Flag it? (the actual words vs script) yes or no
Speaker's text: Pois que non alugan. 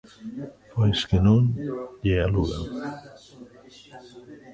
yes